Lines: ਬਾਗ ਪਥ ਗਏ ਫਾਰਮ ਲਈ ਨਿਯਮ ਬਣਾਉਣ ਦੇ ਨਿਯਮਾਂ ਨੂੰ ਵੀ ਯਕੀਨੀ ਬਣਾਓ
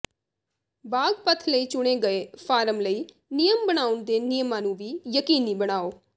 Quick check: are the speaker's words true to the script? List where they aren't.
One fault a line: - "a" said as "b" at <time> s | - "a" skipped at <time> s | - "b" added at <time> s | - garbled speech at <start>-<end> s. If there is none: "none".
- "ਲਈ ਚੁਣੇ" added at 1.5 s